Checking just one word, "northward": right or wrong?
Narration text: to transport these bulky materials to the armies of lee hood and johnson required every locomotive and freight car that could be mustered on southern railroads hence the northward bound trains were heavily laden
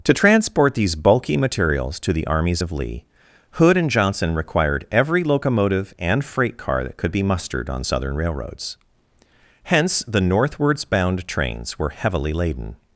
wrong